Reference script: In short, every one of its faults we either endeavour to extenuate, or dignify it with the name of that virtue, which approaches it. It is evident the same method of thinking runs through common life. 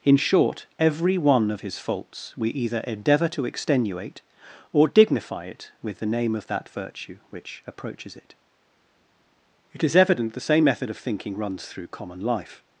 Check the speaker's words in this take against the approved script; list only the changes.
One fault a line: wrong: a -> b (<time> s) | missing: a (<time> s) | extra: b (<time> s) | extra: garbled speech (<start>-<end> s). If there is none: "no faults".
wrong: its -> his (1.6 s)